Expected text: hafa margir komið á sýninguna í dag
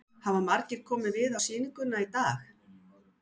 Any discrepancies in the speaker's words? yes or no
yes